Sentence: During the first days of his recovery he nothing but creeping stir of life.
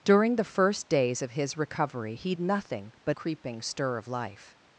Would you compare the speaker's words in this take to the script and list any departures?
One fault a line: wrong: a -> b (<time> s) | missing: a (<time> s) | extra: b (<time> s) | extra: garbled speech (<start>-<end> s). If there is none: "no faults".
no faults